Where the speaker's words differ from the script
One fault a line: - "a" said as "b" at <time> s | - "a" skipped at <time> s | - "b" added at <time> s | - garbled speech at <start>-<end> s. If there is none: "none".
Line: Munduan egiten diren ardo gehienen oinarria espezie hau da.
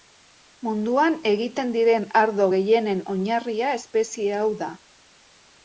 none